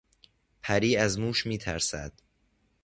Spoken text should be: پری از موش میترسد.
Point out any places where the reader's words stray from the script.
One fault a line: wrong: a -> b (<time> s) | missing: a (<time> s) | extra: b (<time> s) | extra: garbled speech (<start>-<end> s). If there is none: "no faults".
no faults